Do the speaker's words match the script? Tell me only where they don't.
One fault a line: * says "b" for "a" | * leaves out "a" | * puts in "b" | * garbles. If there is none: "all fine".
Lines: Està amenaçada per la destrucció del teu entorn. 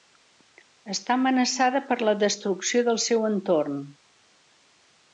* says "seu" for "teu"